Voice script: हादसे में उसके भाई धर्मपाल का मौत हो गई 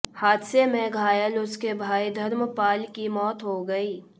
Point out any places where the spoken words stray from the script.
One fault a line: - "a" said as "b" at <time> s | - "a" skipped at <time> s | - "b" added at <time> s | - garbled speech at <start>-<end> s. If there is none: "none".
- "घायल" added at 0.9 s
- "का" said as "की" at 3.0 s